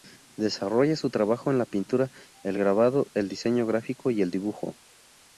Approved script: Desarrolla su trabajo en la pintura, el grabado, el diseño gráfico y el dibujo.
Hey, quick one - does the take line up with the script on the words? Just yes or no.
yes